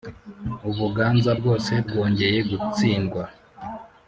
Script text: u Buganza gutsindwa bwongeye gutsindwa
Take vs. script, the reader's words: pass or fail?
fail